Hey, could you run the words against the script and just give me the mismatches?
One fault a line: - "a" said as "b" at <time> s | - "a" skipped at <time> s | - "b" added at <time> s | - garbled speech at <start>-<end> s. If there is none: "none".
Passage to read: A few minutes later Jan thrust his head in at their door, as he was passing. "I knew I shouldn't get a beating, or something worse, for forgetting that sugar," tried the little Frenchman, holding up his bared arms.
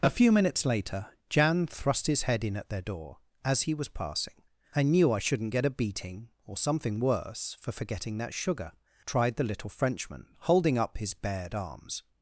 none